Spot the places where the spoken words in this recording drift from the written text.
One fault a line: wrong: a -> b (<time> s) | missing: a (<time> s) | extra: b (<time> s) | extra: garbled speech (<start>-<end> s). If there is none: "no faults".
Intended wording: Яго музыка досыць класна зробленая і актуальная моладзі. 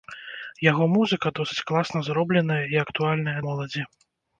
no faults